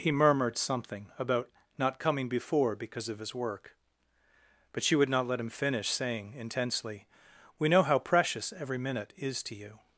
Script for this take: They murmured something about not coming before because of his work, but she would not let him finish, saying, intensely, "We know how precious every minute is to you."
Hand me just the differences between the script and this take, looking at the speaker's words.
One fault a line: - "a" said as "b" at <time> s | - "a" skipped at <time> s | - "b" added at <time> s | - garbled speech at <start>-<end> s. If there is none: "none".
- "They" said as "He" at 0.0 s